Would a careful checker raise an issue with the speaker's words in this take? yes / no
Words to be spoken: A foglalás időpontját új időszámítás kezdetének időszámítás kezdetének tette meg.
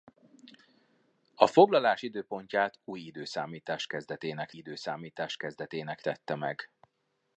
no